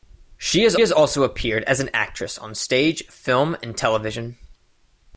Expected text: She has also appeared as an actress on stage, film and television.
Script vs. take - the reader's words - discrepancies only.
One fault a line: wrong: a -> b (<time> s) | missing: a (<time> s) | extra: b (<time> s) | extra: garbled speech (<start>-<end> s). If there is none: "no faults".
extra: has (0.8 s)